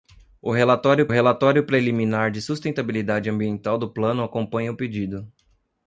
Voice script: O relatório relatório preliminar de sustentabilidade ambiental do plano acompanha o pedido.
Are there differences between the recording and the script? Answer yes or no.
no